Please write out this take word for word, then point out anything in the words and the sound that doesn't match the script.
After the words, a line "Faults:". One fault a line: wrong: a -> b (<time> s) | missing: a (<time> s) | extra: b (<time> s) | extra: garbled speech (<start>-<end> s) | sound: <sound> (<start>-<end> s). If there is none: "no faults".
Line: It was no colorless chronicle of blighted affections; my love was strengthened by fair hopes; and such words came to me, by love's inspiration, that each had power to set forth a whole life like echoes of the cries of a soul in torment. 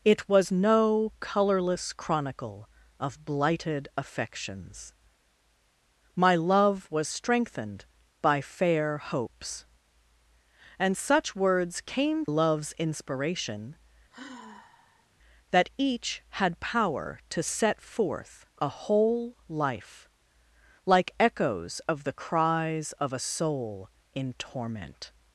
It was no colorless chronicle of blighted affections; my love was strengthened by fair hopes; and such words came love's inspiration, that each had power to set forth a whole life like echoes of the cries of a soul in torment.
Faults:
missing: to me by (12.2 s)
sound: sigh (14.1-15.1 s)